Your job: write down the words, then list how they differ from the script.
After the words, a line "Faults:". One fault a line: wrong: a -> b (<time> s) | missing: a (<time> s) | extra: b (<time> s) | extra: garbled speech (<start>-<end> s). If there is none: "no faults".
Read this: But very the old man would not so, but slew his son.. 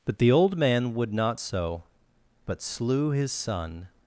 But the old man would not so, but slew his son..
Faults:
missing: very (0.2 s)